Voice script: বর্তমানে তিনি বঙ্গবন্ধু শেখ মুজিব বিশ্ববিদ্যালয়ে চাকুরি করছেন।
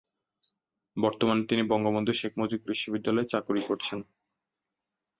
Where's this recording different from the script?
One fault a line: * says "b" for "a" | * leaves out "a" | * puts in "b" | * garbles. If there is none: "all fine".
all fine